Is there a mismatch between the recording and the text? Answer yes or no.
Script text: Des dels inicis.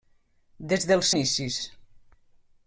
no